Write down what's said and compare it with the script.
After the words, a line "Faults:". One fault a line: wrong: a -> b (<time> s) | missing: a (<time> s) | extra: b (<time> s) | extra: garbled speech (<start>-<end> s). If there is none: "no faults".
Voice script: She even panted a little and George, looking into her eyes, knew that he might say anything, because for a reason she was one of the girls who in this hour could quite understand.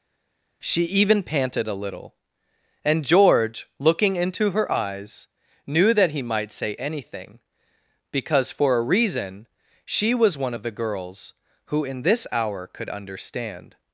She even panted a little and George, looking into her eyes, knew that he might say anything, because for a reason she was one of the girls who in this hour could understand.
Faults:
missing: quite (12.9 s)